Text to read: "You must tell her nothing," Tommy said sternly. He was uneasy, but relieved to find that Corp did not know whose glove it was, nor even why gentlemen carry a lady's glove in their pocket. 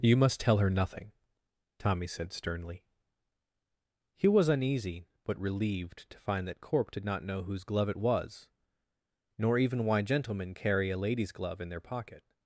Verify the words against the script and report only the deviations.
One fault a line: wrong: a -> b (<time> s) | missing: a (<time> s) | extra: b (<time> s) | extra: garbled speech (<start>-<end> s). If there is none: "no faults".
no faults